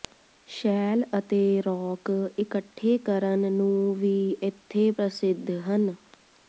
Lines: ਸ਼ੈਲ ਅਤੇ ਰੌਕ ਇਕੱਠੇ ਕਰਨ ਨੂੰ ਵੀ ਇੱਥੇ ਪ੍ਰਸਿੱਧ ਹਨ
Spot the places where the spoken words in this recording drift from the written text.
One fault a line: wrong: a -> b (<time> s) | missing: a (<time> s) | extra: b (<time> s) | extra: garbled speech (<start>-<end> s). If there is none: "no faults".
no faults